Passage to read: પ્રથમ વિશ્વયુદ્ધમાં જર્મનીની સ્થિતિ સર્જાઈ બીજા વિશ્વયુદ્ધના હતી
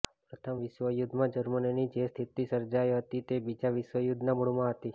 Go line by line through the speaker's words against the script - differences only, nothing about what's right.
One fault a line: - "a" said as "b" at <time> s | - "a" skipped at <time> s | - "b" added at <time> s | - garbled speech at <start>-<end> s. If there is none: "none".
- "જે" added at 1.9 s
- "હતી તે" added at 3.0 s
- "મૂળમાં" added at 4.4 s